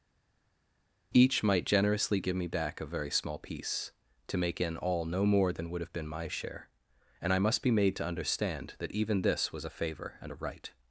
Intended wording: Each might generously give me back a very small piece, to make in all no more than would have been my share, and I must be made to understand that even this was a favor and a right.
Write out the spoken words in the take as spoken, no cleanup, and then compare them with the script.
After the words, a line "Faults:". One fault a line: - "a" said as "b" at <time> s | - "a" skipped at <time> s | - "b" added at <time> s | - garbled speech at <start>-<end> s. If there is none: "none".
Each might generously give me back a very small piece, to make in all no more than would have been my share, and I must be made to understand that even this was a favor and a right.
Faults:
none